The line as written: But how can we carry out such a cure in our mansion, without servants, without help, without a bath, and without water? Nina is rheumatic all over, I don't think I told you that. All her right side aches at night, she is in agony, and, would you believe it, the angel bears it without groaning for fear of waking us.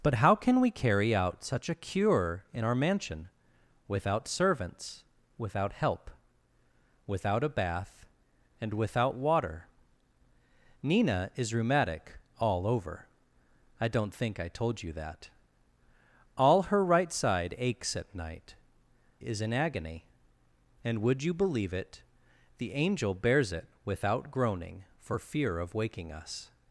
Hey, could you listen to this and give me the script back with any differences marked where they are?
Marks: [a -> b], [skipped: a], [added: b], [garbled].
But how can we carry out such a cure in our mansion, without servants, without help, without a bath, and without water? Nina is rheumatic all over, I don't think I told you that. All her right side aches at night, [skipped: she] is in agony, and, would you believe it, the angel bears it without groaning for fear of waking us.